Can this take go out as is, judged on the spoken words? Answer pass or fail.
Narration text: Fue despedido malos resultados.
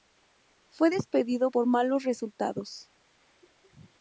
fail